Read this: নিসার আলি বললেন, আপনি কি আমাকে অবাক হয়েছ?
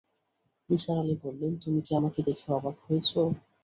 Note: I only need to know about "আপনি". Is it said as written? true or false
false